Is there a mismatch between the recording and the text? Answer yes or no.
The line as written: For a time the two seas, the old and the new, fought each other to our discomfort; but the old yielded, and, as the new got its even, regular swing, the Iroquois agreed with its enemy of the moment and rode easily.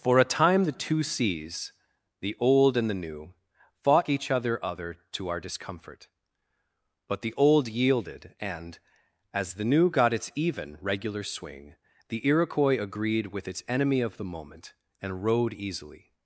yes